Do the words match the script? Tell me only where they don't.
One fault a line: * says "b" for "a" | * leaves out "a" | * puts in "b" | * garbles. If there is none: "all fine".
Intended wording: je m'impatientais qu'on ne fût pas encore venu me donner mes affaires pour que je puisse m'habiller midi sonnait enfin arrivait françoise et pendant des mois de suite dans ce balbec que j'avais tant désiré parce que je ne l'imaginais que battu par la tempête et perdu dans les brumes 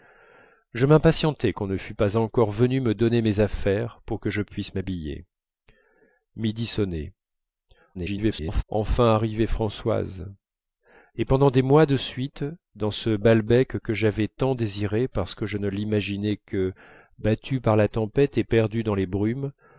* garbles